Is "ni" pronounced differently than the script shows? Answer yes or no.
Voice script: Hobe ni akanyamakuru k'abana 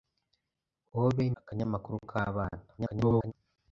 yes